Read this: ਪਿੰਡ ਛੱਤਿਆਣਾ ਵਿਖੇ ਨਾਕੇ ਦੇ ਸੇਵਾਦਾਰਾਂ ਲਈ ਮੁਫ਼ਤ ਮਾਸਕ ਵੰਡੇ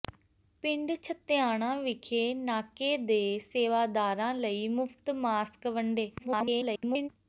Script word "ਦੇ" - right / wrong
right